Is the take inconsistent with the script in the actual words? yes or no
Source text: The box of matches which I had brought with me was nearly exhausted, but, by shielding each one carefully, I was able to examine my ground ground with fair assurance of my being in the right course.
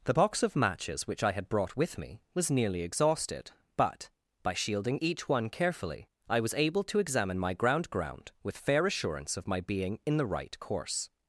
no